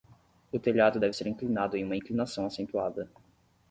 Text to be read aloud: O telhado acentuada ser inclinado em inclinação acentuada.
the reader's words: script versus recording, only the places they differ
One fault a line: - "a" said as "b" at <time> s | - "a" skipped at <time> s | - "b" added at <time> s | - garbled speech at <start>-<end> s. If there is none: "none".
- "acentuada" said as "deve" at 1.0 s
- "uma" added at 1.8 s